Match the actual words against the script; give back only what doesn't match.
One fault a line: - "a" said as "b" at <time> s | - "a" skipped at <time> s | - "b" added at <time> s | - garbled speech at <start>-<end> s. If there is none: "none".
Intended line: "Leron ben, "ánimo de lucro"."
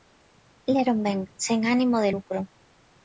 - "sen" added at 1.4 s